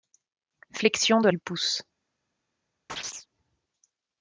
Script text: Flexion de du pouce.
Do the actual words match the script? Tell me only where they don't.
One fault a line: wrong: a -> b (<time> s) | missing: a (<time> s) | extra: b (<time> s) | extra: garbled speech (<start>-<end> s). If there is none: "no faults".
no faults